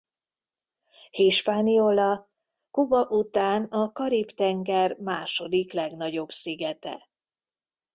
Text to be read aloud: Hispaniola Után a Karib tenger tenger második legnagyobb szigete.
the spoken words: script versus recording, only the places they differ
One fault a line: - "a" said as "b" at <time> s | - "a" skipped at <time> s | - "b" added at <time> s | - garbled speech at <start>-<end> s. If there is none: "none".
- "Kuba" added at 2.7 s
- "tenger" skipped at 5.0 s